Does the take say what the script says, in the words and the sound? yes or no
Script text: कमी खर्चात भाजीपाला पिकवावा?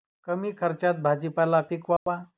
no